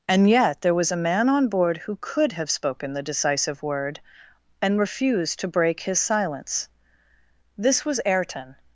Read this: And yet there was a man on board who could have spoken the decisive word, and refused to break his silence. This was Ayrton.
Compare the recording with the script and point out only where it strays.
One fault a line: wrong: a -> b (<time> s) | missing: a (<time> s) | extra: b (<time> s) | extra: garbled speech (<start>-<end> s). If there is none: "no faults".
no faults